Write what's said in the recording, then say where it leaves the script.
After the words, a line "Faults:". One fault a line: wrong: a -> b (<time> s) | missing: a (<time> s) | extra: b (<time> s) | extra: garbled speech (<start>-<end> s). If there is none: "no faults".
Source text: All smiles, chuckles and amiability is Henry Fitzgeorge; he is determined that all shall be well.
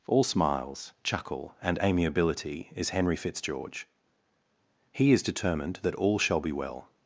All smiles, chuckle and amiability is Henry Fitzgeorge; he is determined that all shall be well.
Faults:
wrong: chuckles -> chuckle (1.0 s)